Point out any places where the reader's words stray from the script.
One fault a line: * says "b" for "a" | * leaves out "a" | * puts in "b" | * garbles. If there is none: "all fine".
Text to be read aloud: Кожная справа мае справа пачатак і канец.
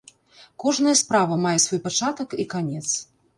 * says "свой" for "справа"